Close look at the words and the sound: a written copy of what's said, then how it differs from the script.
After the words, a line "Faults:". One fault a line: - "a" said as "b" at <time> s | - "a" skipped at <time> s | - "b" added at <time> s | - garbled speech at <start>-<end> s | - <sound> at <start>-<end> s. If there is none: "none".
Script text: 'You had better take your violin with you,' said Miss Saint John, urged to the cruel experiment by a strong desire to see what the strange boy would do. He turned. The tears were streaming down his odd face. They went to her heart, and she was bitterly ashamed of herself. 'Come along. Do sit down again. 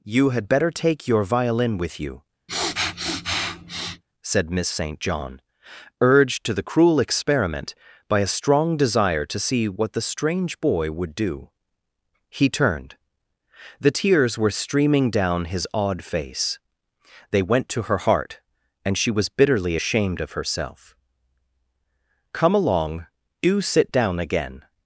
'You had better take your violin with you,' said Miss Saint John, urged to the cruel experiment by a strong desire to see what the strange boy would do. He turned. The tears were streaming down his odd face. They went to her heart, and she was bitterly ashamed of herself. 'Come along. Do sit down again.
Faults:
- sniff at 2.5-4.0 s